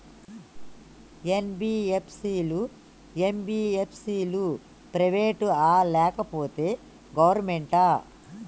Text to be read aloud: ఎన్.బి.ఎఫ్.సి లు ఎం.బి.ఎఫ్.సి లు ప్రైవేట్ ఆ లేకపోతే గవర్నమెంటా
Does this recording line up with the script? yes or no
yes